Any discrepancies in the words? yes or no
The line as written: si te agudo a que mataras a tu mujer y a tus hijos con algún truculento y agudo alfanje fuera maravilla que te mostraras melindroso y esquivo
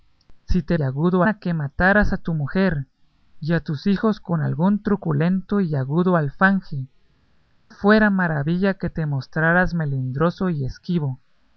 no